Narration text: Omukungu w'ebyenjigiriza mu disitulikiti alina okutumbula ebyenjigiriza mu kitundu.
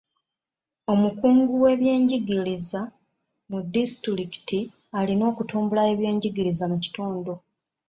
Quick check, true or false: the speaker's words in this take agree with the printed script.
true